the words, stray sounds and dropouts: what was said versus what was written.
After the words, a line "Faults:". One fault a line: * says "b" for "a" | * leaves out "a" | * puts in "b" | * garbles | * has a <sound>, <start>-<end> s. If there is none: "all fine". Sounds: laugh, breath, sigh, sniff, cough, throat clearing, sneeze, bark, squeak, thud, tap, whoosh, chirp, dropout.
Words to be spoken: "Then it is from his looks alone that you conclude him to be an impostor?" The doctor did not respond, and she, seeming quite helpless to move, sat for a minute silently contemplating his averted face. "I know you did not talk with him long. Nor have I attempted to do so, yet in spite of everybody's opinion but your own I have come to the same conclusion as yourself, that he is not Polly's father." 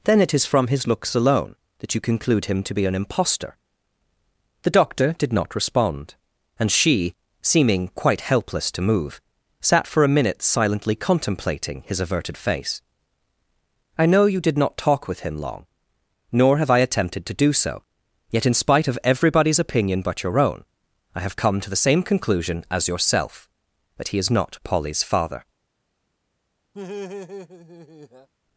"Then it is from his looks alone that you conclude him to be an impostor?" The doctor did not respond, and she, seeming quite helpless to move, sat for a minute silently contemplating his averted face. "I know you did not talk with him long. Nor have I attempted to do so, yet in spite of everybody's opinion but your own I have come to the same conclusion as yourself, that he is not Polly's father."
Faults:
* has a laugh, 26.7-28.3 s